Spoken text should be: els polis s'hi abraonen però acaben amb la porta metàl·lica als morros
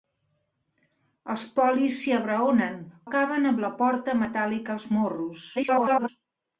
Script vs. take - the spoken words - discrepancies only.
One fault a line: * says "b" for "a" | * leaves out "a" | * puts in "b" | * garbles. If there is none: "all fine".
* leaves out "però"
* garbles